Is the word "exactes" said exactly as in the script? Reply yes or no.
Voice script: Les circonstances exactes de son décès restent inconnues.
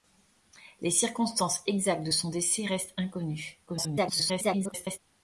yes